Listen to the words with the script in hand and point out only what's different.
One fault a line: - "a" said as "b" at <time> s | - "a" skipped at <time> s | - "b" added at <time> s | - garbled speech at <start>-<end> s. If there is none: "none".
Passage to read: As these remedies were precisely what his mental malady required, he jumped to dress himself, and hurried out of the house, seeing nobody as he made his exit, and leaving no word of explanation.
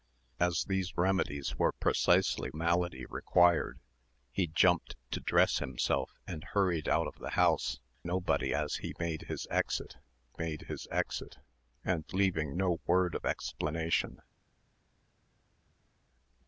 - "what his mental" skipped at 2.5 s
- "seeing" skipped at 7.8 s
- "made his exit" added at 10.4 s